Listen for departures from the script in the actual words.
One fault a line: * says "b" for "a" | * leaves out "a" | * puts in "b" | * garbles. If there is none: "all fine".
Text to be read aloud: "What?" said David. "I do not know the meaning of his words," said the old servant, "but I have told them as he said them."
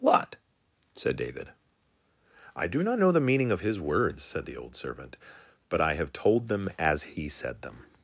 all fine